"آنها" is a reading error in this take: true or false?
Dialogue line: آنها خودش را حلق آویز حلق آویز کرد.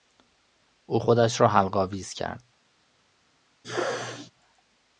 true